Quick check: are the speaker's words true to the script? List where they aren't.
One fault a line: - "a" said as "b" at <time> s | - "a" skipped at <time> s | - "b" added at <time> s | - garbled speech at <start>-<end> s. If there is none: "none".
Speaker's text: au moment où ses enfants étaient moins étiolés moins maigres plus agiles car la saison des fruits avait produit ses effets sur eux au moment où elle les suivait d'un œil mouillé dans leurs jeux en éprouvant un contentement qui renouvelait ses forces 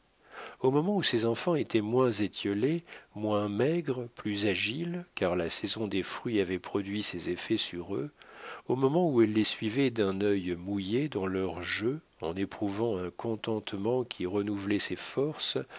none